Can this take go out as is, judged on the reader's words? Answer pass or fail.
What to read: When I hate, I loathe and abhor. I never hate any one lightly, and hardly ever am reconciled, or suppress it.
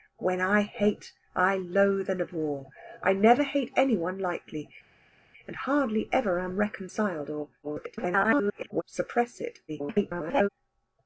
fail